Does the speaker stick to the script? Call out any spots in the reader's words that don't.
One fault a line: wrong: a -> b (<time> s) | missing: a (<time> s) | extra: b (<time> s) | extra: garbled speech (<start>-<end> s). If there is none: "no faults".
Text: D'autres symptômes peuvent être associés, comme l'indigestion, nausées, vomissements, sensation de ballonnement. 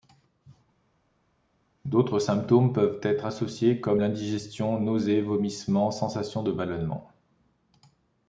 no faults